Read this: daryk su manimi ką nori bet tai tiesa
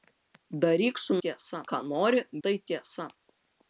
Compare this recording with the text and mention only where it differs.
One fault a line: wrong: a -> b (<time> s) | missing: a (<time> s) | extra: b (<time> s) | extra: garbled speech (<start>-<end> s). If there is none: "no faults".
wrong: manimi -> tiesa (1.2 s)
missing: bet (2.2 s)